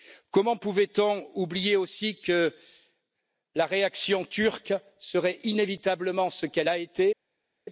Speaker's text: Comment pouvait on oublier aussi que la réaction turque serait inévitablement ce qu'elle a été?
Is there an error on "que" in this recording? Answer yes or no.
no